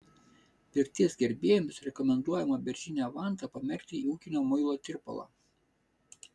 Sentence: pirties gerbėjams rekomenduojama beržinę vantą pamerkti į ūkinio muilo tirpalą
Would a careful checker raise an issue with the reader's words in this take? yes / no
no